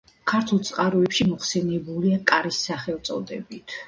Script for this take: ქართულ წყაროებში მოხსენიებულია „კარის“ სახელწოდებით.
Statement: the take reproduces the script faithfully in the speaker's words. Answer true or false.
true